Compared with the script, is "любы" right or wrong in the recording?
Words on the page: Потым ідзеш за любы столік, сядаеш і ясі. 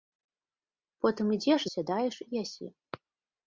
wrong